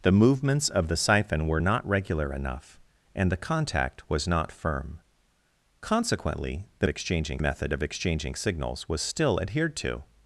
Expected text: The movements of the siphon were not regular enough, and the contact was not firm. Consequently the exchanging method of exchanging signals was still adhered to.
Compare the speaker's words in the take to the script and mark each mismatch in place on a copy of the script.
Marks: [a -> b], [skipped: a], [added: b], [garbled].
The movements of the siphon were not regular enough, and the contact was not firm. Consequently the exchanging method of exchanging signals was still adhered to.